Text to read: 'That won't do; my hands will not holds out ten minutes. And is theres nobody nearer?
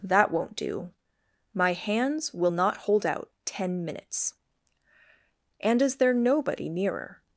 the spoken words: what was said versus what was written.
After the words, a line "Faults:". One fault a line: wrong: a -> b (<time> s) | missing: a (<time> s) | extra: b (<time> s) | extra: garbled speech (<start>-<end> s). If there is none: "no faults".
'That won't do; my hands will not hold out ten minutes. And is there nobody nearer?
Faults:
wrong: holds -> hold (2.8 s)
wrong: theres -> there (6.0 s)